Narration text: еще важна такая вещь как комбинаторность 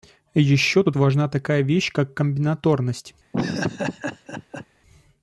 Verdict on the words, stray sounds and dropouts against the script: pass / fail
fail